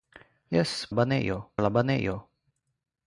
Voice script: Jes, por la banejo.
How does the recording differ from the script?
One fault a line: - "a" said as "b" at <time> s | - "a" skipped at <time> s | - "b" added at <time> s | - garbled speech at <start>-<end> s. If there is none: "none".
- "por" said as "banejo" at 0.9 s